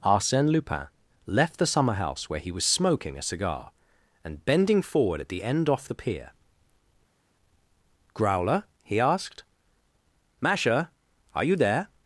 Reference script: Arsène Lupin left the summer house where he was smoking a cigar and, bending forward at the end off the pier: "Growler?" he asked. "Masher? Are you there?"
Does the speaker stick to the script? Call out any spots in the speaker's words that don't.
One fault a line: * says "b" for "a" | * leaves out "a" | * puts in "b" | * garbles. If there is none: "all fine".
all fine